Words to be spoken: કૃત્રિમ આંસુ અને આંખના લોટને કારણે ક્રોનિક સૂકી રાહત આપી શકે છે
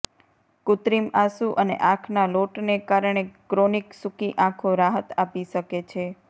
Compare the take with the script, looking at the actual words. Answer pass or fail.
fail